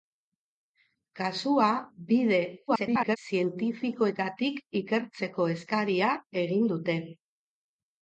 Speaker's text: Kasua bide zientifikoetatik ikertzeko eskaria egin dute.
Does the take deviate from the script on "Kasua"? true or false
false